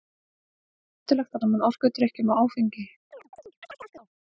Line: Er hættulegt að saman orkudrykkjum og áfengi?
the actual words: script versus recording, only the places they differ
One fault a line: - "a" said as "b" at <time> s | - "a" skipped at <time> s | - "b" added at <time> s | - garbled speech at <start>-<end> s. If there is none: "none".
none